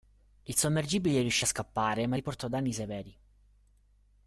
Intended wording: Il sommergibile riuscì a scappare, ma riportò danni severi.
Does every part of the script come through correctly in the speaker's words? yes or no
yes